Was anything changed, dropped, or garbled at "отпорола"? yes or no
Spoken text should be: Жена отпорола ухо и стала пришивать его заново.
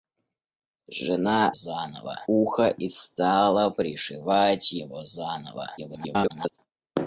yes